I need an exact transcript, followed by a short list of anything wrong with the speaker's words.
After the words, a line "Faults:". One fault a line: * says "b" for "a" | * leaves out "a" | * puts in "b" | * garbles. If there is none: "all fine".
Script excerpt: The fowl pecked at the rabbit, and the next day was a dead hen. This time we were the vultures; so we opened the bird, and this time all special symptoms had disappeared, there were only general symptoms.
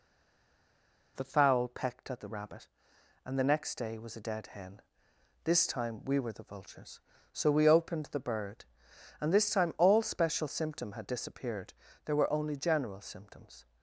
The fowl pecked at the rabbit, and the next day was a dead hen. This time we were the vultures; so we opened the bird, and this time all special symptom had disappeared, there were only general symptoms.
Faults:
* says "symptom" for "symptoms"